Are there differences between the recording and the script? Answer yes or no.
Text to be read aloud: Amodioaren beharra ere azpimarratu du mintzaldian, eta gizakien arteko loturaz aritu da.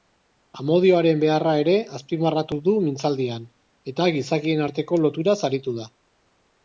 no